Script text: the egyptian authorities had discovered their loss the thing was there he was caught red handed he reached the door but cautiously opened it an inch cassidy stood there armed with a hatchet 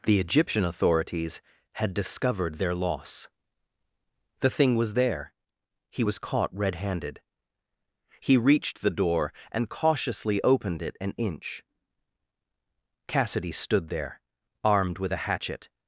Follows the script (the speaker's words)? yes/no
no